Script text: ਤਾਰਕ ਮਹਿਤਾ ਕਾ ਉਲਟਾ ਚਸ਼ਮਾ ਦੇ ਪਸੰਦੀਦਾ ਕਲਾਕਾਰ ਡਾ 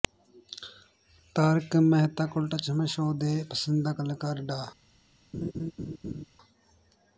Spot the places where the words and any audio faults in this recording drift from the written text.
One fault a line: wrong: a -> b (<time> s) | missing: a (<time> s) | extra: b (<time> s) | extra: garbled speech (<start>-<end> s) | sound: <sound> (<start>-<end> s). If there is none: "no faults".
extra: ਸ਼ੋਅ (2.9 s)
sound: laugh (5.3-6.2 s)